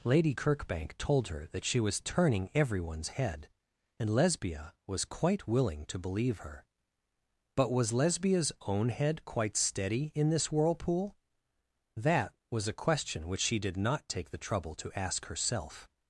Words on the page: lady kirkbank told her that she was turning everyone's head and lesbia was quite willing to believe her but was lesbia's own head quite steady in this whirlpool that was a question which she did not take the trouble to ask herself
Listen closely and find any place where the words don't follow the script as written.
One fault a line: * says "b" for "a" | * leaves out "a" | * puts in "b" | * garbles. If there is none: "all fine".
all fine